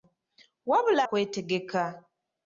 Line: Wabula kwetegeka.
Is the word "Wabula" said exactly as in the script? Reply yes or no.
yes